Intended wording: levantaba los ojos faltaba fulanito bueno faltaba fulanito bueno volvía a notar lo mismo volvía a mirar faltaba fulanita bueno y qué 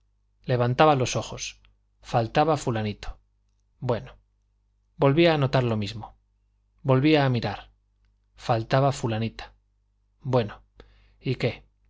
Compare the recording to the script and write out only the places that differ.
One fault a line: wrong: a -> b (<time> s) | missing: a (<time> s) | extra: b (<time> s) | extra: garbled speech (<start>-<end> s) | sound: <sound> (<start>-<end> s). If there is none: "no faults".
missing: faltaba fulanito bueno (4.1 s)